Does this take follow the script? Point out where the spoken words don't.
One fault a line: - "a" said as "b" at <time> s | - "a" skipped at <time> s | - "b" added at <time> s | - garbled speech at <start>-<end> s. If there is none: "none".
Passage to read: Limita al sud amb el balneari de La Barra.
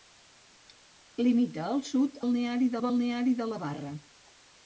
- "amb" said as "balneari" at 2.2 s